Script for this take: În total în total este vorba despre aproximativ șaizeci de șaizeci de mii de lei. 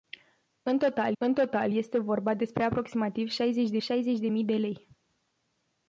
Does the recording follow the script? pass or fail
pass